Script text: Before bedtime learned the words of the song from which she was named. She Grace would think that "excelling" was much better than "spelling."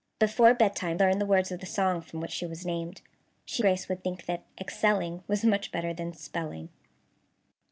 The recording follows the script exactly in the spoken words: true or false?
true